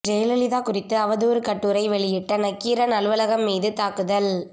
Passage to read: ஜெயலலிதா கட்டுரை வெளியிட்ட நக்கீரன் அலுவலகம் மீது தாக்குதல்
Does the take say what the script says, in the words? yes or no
no